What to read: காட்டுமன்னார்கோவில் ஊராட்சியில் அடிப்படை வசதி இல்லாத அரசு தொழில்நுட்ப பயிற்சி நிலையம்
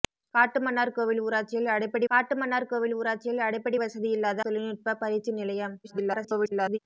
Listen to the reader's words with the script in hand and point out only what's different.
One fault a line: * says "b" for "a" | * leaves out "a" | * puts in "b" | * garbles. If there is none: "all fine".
* puts in "காட்டுமன்னார்கோவில் ஊராட்சியில் அடிப்படை"
* leaves out "அரசு"
* garbles